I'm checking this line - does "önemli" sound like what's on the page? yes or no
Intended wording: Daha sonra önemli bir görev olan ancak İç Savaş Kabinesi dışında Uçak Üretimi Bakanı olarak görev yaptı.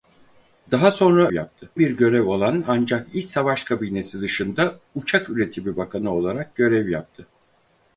no